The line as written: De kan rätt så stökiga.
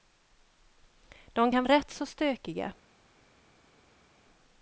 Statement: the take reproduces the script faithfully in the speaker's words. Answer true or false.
true